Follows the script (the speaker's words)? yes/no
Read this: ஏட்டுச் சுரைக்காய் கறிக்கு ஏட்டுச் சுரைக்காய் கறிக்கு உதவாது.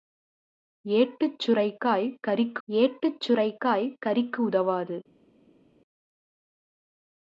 yes